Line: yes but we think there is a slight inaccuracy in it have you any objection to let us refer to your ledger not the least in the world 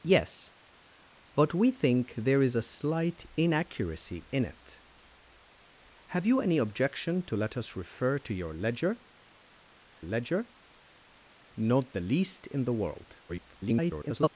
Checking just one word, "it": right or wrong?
right